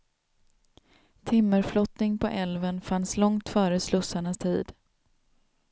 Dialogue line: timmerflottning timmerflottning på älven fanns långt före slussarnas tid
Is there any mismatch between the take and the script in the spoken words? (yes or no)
yes